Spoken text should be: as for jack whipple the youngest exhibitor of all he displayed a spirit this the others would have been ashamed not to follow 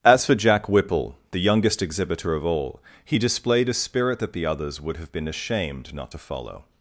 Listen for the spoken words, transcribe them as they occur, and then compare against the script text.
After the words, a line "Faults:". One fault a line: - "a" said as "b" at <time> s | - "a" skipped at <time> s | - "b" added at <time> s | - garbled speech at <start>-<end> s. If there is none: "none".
as for jack whipple the youngest exhibitor of all he displayed a spirit that the others would have been ashamed not to follow
Faults:
- "this" said as "that" at 4.2 s